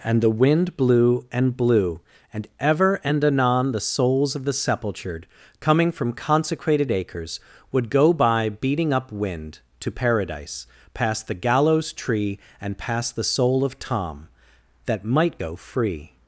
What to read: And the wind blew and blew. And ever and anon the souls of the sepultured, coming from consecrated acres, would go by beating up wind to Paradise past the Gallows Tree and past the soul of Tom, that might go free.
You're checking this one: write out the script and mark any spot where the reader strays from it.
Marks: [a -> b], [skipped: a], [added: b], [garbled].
And the wind blew and blew. And ever and anon the souls of the sepultured, coming from consecrated acres, would go by beating up wind to Paradise past the Gallows Tree and past the soul of Tom, that might go free.